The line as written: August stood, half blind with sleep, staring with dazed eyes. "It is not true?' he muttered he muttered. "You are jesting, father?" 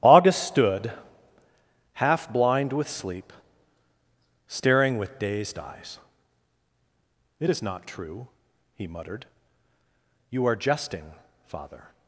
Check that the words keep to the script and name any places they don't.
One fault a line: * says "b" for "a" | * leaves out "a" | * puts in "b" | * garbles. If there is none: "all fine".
* leaves out "he muttered"